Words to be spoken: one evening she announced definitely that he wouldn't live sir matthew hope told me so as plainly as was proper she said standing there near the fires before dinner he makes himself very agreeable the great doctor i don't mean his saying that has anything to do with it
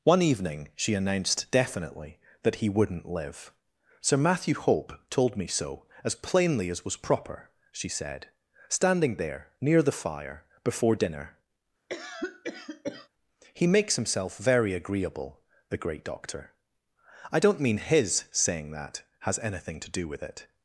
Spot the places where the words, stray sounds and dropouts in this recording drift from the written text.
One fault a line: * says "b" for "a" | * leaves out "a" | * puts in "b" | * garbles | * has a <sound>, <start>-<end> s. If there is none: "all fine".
* says "fire" for "fires"
* has a cough, 11.9-13.1 s